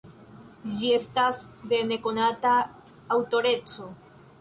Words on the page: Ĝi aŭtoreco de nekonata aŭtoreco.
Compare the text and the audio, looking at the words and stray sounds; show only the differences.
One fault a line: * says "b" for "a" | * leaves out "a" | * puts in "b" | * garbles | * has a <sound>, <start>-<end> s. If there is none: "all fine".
* says "estas" for "aŭtoreco"